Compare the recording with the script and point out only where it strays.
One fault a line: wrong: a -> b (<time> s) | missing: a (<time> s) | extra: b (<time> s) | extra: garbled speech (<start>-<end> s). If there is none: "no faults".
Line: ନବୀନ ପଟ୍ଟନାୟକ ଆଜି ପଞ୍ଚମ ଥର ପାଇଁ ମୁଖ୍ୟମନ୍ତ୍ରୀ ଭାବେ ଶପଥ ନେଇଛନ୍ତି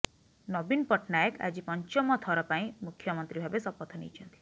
no faults